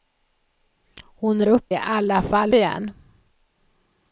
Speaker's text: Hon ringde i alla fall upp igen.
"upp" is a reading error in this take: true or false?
true